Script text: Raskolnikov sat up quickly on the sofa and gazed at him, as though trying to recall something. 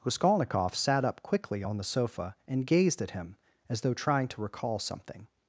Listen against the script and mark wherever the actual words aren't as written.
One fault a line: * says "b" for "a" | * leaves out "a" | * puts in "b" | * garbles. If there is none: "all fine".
all fine